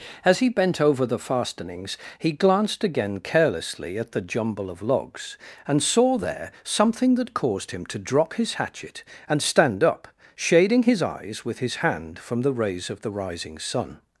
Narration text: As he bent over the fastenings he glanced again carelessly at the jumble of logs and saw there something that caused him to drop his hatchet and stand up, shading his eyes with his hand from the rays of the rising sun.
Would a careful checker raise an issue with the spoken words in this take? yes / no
no